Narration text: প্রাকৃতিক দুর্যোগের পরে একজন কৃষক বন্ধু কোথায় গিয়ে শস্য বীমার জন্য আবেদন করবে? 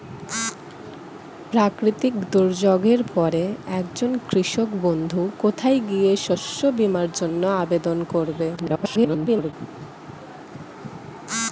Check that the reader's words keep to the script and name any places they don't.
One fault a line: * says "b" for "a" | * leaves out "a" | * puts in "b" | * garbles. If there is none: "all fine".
* garbles